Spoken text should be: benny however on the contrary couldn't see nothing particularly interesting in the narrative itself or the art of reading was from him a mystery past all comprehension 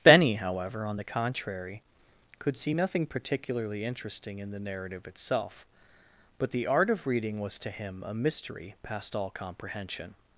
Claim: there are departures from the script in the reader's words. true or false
true